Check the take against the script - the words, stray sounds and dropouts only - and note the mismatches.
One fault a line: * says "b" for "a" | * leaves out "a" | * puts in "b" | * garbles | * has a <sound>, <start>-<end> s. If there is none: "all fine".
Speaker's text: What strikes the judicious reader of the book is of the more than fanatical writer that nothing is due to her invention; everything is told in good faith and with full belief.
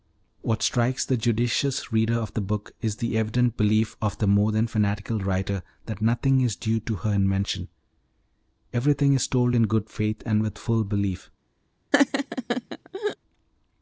* puts in "the evident belief"
* has a laugh, 11.9-13.2 s